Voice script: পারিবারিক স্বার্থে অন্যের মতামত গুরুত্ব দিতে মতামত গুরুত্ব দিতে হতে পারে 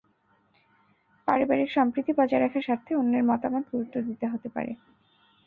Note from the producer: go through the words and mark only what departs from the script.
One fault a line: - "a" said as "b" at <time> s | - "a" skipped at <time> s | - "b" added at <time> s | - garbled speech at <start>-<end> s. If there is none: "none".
- "স্বার্থে অন্যের মতামত গুরুত্ব দিতে" said as "সম্প্রীতি বজায় রাখার স্বার্থে অন্যের" at 1.7 s